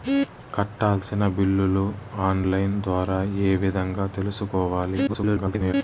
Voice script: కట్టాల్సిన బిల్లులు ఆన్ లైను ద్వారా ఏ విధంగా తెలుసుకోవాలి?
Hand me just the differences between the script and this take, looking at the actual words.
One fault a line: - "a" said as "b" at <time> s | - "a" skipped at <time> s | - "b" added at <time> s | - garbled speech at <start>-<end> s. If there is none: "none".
- garbled speech at 5.1-5.7 s